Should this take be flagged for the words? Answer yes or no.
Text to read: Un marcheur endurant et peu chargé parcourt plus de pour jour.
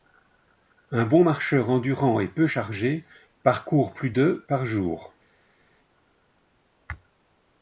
yes